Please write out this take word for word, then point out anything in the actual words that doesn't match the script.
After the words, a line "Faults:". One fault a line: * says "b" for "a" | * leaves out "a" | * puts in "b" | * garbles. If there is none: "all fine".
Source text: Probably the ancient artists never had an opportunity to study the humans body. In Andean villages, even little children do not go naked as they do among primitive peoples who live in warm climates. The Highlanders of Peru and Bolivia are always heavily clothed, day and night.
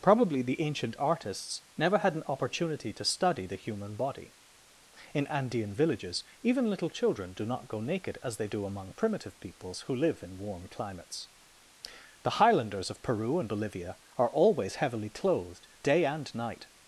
Probably the ancient artists never had an opportunity to study the human body. In Andean villages, even little children do not go naked as they do among primitive peoples who live in warm climates. The Highlanders of Peru and Bolivia are always heavily clothed, day and night.
Faults:
* says "human" for "humans"